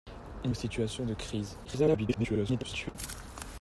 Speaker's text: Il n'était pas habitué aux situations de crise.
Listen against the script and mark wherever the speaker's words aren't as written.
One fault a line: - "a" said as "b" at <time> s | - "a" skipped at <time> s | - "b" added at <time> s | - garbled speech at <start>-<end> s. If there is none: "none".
- "n'était pas habitué" skipped at 0.5 s
- garbled speech at 1.6-3.0 s